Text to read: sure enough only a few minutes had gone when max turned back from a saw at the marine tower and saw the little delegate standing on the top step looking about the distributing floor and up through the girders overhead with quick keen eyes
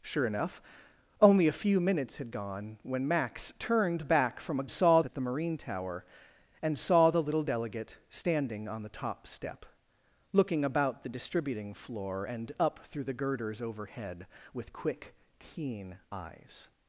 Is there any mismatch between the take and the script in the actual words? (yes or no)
no